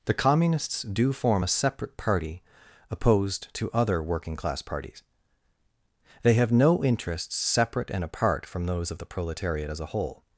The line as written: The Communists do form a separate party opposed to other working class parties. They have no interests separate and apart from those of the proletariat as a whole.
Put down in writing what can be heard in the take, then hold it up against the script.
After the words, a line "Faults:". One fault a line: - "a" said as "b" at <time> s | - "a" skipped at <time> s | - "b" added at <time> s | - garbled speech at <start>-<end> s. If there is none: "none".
The Communists do form a separate party opposed to other working class parties. They have no interests separate and apart from those of the proletariat as a whole.
Faults:
none